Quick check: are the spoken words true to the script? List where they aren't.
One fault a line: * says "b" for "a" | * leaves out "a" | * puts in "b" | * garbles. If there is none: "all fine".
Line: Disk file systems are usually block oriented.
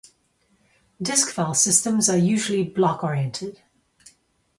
all fine